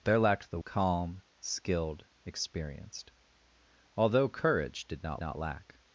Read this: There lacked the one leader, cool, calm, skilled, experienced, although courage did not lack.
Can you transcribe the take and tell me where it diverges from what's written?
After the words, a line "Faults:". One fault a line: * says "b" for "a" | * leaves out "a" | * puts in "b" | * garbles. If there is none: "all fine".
There lacked the calm, skilled, experienced, although courage did not not lack.
Faults:
* leaves out "one leader cool"
* puts in "not"